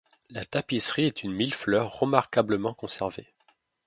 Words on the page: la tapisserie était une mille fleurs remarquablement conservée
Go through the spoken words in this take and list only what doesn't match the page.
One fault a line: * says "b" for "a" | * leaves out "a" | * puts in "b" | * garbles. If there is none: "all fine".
* says "est" for "était"